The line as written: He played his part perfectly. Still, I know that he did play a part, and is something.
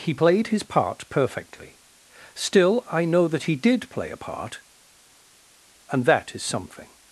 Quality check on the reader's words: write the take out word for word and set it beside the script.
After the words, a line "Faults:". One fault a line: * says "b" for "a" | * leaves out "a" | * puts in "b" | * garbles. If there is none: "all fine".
He played his part perfectly. Still, I know that he did play a part, and that is something.
Faults:
* puts in "that"